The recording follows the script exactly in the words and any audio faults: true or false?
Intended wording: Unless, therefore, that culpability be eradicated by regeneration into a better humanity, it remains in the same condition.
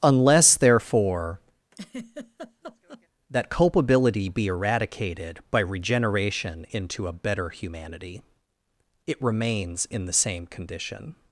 false